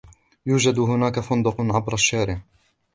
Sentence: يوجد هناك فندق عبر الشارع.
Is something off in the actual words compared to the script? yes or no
no